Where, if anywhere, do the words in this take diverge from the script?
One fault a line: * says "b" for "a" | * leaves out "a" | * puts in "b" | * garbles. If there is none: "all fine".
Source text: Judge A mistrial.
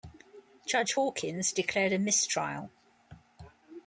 * puts in "Hawkins declared"